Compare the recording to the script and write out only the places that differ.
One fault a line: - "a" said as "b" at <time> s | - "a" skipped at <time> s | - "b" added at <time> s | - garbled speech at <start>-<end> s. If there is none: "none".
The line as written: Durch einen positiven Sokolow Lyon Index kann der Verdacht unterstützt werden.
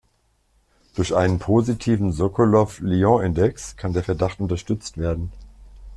none